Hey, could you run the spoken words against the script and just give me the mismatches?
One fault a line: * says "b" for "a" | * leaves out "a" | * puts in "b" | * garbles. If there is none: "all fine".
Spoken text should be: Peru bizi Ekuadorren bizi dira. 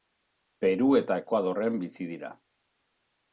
* says "eta" for "bizi"